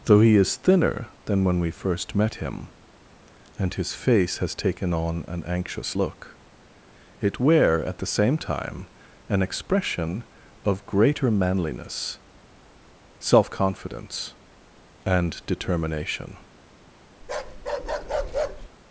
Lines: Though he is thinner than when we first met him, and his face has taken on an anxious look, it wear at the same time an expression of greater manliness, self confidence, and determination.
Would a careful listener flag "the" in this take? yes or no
no